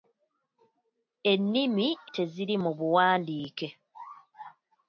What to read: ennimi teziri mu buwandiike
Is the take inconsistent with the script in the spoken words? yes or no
no